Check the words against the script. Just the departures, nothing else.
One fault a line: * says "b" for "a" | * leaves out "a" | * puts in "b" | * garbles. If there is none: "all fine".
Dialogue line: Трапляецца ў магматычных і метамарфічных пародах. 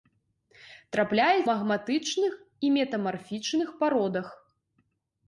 * leaves out "ў"